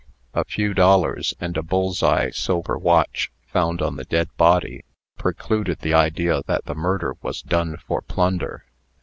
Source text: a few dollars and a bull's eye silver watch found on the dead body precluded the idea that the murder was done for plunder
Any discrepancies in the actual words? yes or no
no